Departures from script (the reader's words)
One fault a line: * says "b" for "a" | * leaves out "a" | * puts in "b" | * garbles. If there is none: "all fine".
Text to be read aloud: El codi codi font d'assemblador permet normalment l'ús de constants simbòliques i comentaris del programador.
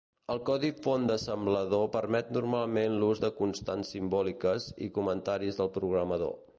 * leaves out "codi"